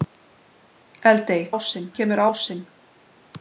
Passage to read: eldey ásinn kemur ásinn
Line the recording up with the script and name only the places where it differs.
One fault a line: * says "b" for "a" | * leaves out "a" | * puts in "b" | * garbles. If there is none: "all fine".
all fine